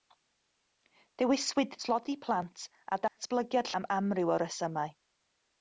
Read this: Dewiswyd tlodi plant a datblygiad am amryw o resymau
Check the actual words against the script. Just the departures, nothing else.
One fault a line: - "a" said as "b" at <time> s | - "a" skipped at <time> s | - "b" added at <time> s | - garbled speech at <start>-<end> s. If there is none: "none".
none